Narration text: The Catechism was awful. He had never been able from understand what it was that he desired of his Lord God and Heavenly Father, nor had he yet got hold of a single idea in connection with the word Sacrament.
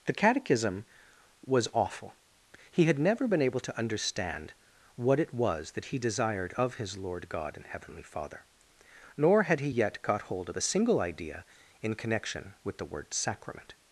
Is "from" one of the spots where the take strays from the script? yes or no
yes